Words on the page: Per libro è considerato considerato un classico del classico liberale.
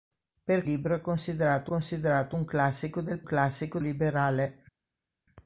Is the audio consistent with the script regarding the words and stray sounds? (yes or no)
yes